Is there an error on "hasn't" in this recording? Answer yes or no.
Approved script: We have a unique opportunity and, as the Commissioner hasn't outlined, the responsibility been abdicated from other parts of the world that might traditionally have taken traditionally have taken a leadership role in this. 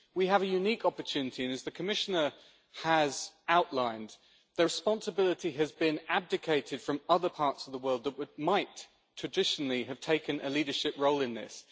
yes